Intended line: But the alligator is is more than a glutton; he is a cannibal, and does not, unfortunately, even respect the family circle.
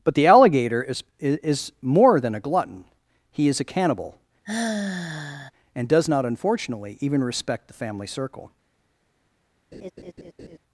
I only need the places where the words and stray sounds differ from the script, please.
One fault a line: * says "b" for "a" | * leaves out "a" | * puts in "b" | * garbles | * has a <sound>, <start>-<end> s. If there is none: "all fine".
* has a sigh, 4.4-5.5 s
* has a laugh, 9.7-10.6 s